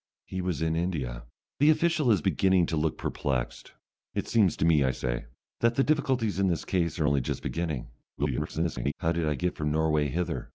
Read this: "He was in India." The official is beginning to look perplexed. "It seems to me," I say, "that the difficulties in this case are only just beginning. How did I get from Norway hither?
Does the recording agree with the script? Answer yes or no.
no